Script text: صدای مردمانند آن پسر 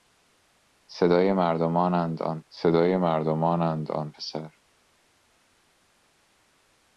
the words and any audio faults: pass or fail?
fail